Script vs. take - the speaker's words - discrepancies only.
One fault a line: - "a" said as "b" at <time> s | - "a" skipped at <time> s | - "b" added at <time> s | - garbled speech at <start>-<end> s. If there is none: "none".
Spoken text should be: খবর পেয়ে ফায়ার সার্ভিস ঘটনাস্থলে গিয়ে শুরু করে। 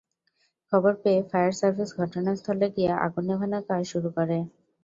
- "আগুন নেভানোর কাজ" added at 3.0 s